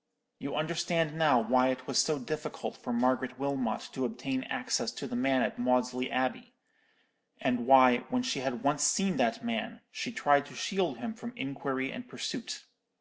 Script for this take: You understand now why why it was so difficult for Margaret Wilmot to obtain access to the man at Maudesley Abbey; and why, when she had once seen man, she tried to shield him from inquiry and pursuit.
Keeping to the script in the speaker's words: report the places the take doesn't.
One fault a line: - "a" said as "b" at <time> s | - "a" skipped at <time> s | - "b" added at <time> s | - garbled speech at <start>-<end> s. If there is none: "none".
- "why" skipped at 1.7 s
- "that" added at 9.2 s